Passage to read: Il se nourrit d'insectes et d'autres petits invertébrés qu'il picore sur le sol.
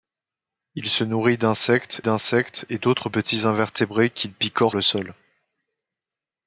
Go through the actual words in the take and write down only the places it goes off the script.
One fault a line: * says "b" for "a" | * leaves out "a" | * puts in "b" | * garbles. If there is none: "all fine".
* puts in "d'insectes"
* leaves out "sur"